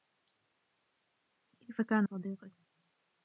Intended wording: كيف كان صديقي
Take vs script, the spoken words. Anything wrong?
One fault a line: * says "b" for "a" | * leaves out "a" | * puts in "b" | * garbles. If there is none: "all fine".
all fine